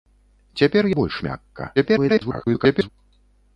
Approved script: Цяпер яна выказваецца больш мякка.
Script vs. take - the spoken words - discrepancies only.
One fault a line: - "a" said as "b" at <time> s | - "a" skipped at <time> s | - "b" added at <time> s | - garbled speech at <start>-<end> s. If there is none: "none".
- "яна выказваецца" skipped at 0.9 s
- garbled speech at 1.8-2.9 s